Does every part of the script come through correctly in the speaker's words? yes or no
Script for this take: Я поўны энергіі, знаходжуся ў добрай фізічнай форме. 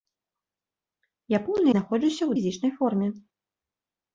no